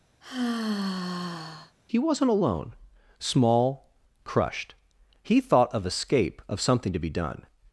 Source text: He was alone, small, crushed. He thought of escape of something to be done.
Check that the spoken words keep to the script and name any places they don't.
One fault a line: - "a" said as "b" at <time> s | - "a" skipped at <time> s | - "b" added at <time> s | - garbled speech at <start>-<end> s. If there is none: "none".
- "was" said as "wasn't" at 2.0 s